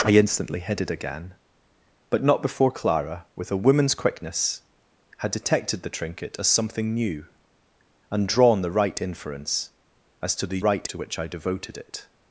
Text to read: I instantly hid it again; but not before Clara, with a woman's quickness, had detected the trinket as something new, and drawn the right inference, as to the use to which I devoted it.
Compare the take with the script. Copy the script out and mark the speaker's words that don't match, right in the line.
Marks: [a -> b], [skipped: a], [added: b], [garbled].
I instantly hid it again; but not before Clara, with a woman's quickness, had detected the trinket as something new, and drawn the right inference, as to the [use -> right] to which I devoted it.